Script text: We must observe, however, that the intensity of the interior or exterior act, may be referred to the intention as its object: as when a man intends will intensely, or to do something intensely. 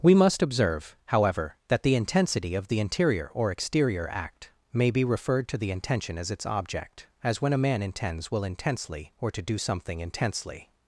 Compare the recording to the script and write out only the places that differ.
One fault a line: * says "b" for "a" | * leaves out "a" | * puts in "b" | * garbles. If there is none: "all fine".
all fine